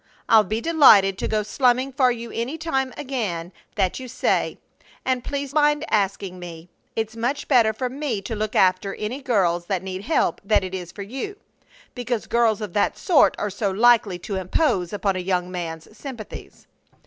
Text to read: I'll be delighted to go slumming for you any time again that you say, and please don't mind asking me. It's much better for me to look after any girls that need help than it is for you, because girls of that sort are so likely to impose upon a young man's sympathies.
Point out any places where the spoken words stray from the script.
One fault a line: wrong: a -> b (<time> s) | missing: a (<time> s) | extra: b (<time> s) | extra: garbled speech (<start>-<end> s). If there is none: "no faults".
missing: don't (5.5 s)